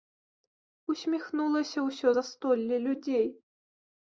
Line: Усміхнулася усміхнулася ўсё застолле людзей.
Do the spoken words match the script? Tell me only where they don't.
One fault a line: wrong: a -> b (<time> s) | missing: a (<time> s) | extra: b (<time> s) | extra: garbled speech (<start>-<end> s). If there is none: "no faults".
missing: усміхнулася (1.8 s)